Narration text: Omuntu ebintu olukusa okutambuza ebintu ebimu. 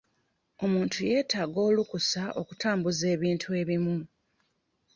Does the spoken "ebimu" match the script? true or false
true